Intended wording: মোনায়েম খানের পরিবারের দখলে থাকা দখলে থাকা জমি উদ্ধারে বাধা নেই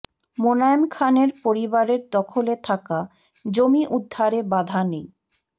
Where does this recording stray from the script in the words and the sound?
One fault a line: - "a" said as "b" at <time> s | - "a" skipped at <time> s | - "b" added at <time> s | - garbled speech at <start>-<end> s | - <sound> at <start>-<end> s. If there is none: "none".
- "দখলে থাকা" skipped at 3.0 s